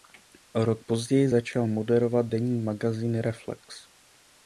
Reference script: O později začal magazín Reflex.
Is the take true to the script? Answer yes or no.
no